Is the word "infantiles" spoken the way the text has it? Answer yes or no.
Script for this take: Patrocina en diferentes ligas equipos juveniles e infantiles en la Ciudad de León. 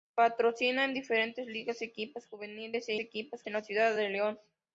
no